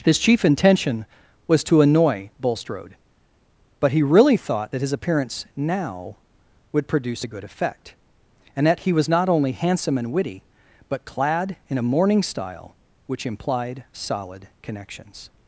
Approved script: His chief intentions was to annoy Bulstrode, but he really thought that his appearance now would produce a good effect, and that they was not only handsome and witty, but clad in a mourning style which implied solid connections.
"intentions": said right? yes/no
no